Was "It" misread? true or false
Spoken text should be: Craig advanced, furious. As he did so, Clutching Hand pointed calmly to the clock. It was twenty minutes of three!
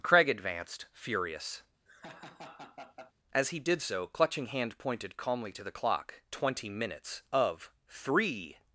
true